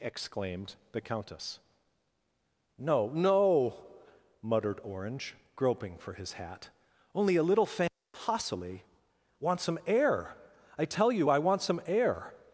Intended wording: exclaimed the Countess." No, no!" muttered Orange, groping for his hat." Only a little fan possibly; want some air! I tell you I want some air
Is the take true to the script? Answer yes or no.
yes